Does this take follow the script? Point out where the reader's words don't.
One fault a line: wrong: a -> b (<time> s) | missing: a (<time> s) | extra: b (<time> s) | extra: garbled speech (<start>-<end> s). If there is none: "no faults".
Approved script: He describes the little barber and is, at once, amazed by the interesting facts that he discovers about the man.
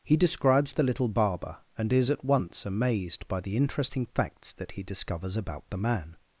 no faults